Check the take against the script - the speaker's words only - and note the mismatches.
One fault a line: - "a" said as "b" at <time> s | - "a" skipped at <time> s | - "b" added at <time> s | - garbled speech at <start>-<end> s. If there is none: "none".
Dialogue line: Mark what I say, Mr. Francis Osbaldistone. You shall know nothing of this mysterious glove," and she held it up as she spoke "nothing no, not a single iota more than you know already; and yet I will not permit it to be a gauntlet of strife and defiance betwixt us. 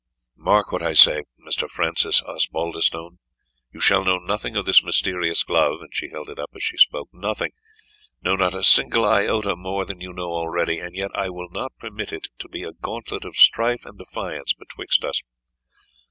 none